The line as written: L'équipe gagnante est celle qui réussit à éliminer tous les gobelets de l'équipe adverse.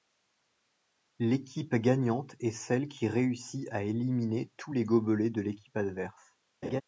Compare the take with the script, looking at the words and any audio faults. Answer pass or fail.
fail